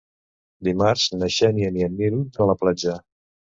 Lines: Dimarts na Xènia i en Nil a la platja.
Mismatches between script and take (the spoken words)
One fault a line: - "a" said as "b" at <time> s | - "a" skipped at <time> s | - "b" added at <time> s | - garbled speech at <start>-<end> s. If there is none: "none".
none